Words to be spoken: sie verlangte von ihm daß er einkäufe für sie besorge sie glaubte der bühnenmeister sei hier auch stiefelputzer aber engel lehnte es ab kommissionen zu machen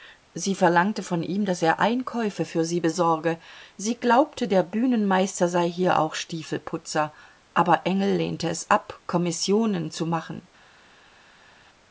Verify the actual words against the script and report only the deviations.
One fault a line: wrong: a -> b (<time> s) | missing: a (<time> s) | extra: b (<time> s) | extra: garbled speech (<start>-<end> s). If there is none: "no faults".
no faults